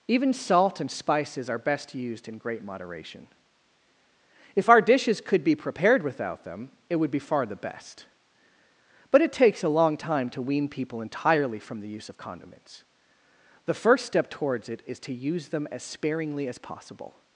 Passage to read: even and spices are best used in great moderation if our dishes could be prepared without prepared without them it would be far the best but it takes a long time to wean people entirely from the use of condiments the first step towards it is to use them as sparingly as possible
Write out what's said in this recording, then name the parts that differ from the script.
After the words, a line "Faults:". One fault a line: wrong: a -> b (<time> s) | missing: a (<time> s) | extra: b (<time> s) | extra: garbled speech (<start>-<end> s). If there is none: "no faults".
even salt and spices are best used in great moderation if our dishes could be prepared without them it would be far the best but it takes a long time to wean people entirely from the use of condiments the first step towards it is to use them as sparingly as possible
Faults:
extra: salt (0.3 s)
missing: prepared without (6.4 s)